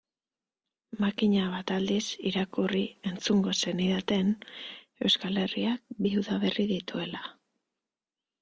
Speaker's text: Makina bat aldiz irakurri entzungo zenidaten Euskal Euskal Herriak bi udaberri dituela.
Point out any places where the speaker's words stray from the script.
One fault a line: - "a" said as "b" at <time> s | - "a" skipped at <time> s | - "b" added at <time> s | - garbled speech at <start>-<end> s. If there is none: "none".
- "Euskal" skipped at 5.4 s